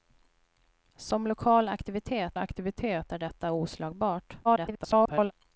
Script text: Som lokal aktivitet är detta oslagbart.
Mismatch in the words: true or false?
true